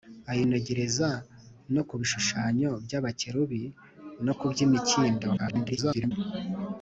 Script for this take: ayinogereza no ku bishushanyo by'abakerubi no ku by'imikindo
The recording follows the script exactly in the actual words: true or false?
false